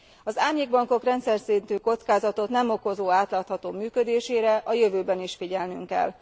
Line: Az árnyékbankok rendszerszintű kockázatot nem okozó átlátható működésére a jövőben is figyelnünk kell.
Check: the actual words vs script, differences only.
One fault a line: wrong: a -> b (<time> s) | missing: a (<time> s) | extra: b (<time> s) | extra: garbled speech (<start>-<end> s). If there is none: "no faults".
no faults